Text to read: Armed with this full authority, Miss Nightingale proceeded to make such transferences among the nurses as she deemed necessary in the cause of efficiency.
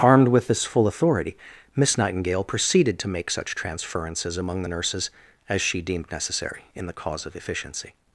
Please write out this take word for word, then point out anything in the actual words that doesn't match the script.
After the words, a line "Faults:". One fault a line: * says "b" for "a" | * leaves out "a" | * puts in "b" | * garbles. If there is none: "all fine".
Armed with this full authority, Miss Nightingale proceeded to make such transferences among the nurses as she deemed necessary in the cause of efficiency.
Faults:
all fine